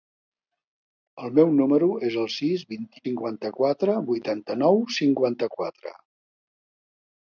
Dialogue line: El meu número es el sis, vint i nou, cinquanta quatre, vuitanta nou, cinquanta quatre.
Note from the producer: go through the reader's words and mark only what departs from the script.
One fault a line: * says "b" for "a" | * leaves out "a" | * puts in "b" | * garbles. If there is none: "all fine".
* leaves out "nou"